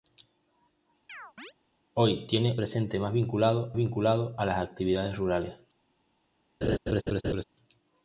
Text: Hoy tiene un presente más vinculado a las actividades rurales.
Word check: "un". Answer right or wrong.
wrong